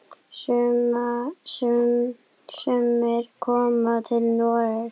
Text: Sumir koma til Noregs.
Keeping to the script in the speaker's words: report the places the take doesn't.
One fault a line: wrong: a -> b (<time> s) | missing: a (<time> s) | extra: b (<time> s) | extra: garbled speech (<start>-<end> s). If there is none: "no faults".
no faults